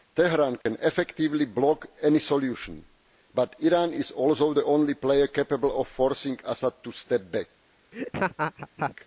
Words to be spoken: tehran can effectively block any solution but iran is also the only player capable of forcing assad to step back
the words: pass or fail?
pass